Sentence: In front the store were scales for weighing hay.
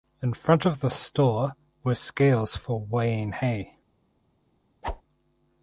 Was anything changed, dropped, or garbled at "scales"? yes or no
no